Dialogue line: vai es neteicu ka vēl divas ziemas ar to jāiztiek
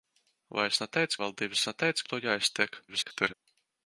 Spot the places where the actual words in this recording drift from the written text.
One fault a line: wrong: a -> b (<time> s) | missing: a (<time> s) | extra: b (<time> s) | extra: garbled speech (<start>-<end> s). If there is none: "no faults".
missing: ka (1.2 s)
wrong: ziemas -> neteicu (1.7 s)
extra: garbled speech (2.9-3.3 s)